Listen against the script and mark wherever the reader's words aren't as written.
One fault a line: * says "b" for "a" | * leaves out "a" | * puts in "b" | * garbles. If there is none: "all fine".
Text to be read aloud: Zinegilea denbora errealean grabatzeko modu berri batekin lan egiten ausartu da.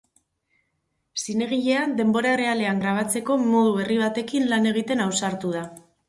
all fine